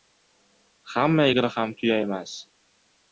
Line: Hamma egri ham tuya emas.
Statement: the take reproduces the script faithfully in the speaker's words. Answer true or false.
true